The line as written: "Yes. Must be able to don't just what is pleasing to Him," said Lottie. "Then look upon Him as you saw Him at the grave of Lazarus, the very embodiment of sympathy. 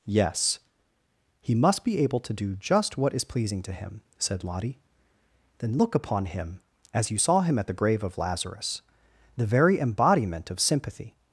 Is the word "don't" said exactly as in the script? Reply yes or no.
no